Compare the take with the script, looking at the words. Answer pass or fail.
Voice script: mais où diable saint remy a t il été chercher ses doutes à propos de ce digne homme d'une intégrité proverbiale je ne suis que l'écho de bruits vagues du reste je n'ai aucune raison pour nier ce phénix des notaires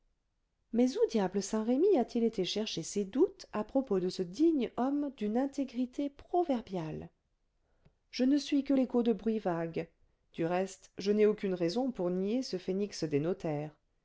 pass